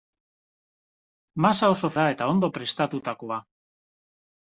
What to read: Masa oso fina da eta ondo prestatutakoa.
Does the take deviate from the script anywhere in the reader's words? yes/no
yes